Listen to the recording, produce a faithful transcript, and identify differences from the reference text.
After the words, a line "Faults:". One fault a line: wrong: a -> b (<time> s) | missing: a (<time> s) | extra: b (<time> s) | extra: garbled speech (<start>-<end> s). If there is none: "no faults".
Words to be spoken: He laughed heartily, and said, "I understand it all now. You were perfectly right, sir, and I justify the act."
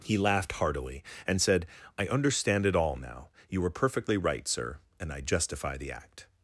He laughed heartily, and said, "I understand it all now. You were perfectly right, sir, and I justify the act."
Faults:
no faults